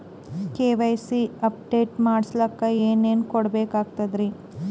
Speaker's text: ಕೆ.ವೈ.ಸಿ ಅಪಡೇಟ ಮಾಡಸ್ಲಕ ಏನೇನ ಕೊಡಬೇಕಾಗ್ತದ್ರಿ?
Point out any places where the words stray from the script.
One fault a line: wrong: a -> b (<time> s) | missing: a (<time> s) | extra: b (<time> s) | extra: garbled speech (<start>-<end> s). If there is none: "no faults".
no faults